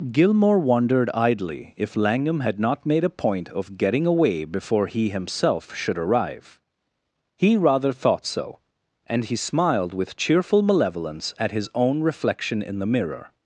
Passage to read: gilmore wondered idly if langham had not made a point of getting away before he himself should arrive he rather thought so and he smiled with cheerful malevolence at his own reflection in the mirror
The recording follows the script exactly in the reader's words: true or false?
true